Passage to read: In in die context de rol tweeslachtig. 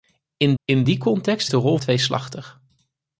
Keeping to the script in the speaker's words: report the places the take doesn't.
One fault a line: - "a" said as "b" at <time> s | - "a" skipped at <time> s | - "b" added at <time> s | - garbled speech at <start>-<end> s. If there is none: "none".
none